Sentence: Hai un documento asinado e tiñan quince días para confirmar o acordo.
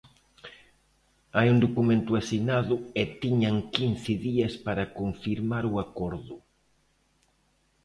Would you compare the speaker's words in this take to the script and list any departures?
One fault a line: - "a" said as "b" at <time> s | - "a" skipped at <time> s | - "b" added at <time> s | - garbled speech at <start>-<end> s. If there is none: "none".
none